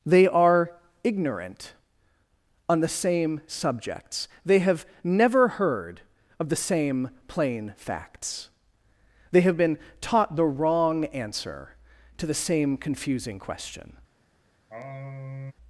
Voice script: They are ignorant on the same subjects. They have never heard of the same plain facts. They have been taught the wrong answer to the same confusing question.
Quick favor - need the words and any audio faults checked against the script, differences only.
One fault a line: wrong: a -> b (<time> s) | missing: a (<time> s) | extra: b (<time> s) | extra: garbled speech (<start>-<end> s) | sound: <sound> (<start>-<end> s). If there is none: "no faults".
sound: sigh (14.7-15.5 s)